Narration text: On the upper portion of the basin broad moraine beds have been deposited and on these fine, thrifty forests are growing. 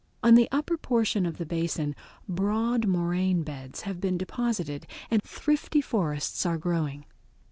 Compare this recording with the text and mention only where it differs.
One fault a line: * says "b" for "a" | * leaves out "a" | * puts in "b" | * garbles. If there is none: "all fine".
* leaves out "on these fine"